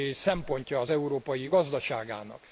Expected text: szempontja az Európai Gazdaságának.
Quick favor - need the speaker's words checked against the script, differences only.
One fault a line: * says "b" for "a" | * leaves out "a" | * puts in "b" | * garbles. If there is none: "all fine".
all fine